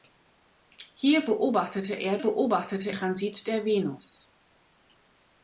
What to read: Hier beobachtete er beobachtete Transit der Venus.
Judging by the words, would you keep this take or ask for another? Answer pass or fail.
pass